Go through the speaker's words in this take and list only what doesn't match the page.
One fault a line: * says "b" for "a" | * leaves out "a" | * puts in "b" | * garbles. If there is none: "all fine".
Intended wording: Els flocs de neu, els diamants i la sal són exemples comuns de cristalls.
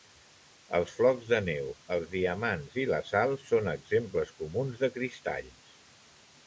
all fine